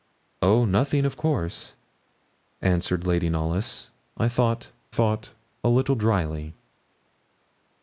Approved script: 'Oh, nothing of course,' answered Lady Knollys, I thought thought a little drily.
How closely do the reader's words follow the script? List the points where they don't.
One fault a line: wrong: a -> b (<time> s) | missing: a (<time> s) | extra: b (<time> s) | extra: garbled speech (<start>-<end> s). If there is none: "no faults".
no faults